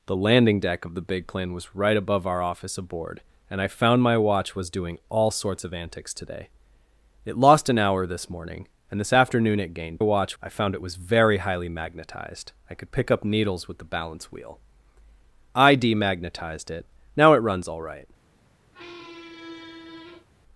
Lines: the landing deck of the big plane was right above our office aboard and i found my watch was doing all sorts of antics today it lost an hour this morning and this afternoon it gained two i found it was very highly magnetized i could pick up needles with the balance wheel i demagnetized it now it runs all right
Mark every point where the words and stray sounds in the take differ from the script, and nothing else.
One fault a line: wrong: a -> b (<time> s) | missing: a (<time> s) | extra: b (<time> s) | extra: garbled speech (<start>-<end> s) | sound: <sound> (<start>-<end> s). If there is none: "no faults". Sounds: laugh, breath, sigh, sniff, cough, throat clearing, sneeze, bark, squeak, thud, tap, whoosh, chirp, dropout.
wrong: two -> watch (10.0 s)
sound: squeak (18.7-20.3 s)